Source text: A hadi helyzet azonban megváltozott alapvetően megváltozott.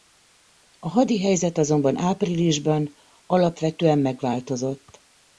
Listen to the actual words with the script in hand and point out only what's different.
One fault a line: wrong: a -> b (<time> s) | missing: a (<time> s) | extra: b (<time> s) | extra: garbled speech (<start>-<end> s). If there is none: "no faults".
wrong: megváltozott -> áprilisban (2.0 s)